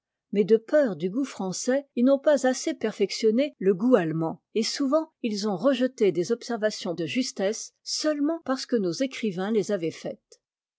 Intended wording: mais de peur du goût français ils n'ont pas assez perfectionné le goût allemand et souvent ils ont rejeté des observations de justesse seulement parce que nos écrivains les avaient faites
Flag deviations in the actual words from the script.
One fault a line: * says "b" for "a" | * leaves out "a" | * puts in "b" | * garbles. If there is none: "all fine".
all fine